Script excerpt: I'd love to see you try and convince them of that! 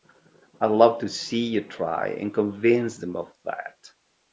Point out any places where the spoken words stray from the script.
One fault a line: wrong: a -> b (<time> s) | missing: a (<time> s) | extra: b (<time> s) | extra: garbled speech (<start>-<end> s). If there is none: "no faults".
no faults